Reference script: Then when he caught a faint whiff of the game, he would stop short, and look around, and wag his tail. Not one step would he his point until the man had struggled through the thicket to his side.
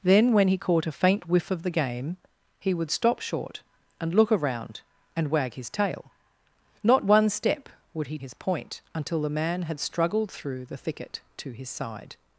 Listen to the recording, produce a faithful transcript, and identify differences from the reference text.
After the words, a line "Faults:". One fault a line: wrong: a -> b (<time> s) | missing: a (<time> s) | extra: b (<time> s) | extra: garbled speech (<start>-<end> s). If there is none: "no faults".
Then when he caught a faint whiff of the game, he would stop short, and look around, and wag his tail. Not one step would he his point until the man had struggled through the thicket to his side.
Faults:
no faults